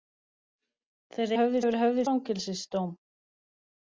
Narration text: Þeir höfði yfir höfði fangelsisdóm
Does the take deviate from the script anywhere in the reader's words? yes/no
no